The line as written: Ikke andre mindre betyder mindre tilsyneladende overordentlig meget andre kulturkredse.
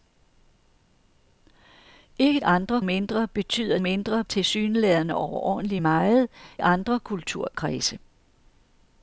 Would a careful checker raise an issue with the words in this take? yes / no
no